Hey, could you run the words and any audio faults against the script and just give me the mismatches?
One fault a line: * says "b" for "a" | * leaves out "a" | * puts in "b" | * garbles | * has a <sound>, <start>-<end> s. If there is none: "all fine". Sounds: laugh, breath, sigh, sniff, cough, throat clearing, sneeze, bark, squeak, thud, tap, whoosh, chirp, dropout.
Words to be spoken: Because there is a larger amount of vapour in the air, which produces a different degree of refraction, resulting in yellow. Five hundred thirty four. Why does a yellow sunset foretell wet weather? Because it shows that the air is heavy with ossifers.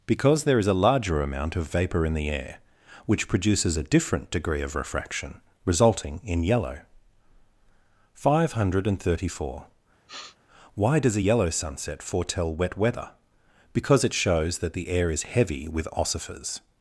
* has a sniff, 10.1-10.4 s